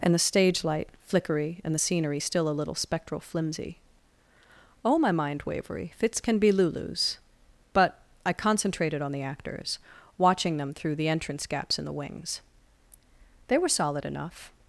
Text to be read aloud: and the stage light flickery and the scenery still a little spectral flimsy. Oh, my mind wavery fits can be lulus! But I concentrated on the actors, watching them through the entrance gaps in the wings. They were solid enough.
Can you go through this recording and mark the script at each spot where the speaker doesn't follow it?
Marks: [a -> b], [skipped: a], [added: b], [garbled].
and the stage light flickery and the scenery still a little spectral flimsy. Oh, my mind wavery fits can be lulus! But I concentrated on the actors, watching them through the entrance gaps in the wings. They were solid enough.